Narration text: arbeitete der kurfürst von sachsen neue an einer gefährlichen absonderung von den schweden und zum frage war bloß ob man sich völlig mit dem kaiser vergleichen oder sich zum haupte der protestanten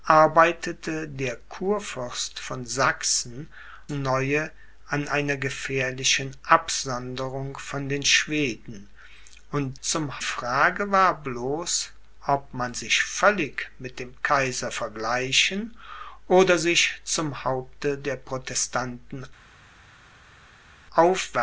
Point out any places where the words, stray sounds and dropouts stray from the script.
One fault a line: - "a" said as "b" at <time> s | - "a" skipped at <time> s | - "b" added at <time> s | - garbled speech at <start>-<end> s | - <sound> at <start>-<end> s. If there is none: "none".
none